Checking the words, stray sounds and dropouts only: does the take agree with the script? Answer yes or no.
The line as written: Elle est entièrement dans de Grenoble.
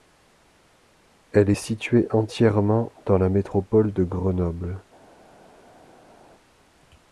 no